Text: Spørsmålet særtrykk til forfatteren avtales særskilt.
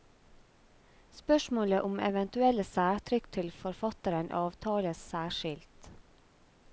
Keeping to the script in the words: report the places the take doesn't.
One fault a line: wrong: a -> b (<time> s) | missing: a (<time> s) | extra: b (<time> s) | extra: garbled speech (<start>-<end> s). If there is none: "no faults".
extra: om eventuelle (1.9 s)